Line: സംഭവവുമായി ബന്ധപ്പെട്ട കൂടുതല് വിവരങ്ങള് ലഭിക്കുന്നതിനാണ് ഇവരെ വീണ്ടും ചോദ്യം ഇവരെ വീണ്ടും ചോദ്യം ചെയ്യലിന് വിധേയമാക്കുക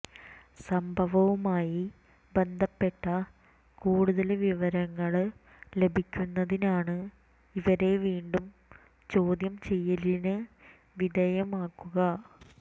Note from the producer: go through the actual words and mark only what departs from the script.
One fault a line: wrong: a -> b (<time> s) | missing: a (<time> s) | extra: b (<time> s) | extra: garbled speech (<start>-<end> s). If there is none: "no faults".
missing: ഇവരെ വീണ്ടും ചോദ്യം (9.6 s)